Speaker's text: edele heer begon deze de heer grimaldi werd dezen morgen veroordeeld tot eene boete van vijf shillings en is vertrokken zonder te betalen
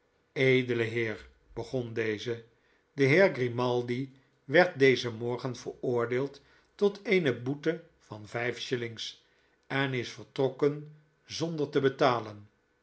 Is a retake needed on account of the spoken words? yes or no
no